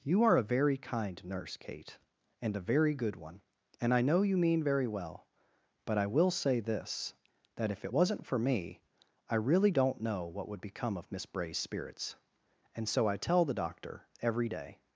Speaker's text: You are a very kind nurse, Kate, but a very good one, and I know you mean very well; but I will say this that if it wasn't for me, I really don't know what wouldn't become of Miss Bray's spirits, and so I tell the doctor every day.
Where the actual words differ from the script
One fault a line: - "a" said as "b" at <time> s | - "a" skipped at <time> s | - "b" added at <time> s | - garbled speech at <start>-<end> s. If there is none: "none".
- "but" said as "and" at 2.4 s
- "wouldn't" said as "would" at 10.5 s